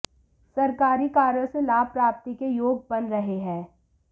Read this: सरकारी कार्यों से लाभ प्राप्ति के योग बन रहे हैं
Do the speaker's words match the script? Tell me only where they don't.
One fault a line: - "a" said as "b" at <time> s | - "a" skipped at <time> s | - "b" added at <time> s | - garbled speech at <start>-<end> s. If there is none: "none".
none